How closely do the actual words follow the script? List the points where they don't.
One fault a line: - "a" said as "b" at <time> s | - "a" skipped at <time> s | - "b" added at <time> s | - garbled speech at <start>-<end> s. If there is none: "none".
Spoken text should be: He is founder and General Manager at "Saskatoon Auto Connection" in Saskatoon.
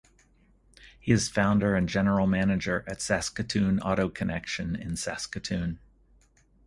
none